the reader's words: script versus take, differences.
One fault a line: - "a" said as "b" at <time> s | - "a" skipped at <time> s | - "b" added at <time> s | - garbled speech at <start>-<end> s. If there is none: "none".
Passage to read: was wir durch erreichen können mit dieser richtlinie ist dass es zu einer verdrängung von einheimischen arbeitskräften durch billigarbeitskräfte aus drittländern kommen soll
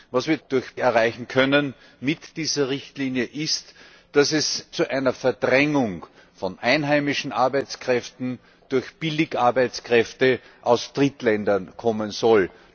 none